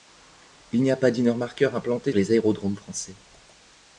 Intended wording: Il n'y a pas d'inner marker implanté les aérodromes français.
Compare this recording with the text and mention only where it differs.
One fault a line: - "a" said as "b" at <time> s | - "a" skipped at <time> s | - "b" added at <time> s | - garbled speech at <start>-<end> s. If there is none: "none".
none